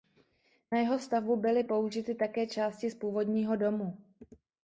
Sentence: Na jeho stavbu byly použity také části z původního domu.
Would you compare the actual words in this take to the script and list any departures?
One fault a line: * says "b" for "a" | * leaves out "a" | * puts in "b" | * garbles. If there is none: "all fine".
all fine